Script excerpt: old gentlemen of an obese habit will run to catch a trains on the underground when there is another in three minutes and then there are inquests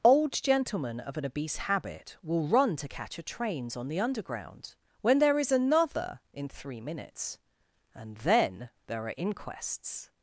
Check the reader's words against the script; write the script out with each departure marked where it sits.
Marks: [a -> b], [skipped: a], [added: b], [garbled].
old gentlemen of an obese habit will run to catch a trains on the underground when there is another in three minutes and then there are inquests